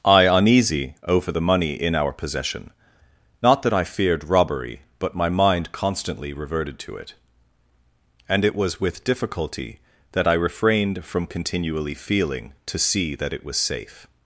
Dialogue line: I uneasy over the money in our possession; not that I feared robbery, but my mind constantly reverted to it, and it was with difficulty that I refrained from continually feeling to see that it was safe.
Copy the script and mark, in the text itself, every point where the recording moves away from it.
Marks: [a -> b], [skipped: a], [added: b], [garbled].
I uneasy over the money in our possession; not that I feared robbery, but my mind constantly reverted to it, and it was with difficulty that I refrained from continually feeling to see that it was safe.